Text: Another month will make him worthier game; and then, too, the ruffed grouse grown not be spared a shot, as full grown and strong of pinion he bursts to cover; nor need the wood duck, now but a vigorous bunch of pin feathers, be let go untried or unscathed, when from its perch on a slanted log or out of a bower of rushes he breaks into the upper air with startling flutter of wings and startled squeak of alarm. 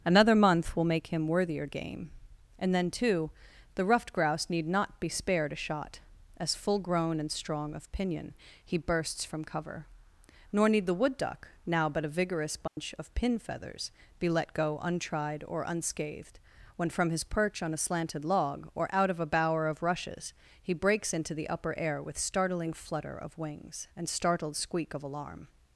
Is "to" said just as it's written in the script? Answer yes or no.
no